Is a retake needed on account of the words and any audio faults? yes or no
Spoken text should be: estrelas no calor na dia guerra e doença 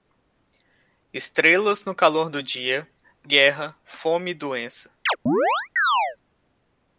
yes